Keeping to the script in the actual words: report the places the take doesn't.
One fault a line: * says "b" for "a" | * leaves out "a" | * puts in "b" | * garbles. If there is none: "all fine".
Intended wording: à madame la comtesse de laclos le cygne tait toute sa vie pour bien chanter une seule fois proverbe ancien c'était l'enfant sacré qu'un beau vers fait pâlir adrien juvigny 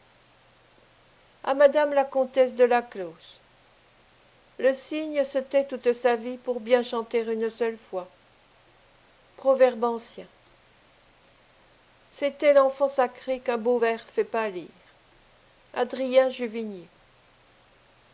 * puts in "se"